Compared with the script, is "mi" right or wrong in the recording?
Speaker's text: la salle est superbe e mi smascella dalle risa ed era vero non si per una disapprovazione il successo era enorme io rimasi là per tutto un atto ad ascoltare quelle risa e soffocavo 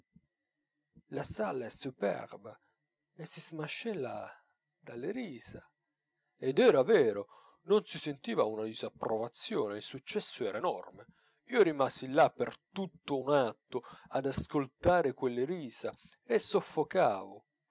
wrong